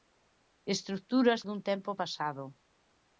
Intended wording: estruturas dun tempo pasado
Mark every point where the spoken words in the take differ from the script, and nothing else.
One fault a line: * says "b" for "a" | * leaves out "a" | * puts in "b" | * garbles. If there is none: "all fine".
all fine